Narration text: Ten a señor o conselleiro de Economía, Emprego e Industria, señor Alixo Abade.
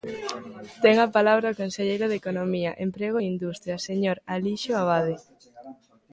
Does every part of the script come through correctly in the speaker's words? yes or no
no